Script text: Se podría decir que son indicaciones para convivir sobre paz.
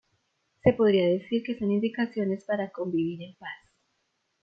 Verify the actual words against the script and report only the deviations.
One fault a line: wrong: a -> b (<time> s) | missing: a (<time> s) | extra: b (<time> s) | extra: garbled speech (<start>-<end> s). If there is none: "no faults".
wrong: sobre -> en (3.2 s)